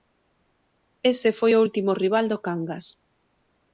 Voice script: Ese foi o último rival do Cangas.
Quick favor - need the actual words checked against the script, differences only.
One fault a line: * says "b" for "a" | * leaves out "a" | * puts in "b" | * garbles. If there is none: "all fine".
all fine